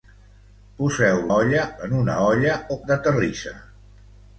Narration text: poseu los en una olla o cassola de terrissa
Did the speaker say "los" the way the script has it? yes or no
no